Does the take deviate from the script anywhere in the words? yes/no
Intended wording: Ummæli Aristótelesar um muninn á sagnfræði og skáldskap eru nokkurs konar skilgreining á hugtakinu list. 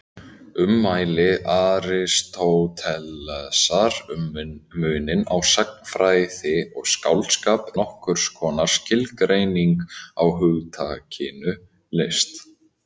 yes